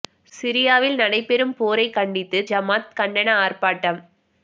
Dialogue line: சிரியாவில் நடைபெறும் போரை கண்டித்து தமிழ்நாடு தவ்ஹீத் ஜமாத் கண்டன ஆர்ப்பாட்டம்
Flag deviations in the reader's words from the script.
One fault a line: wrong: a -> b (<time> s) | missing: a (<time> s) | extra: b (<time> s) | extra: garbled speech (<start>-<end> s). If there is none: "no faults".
missing: தமிழ்நாடு தவ்ஹீத் (2.4 s)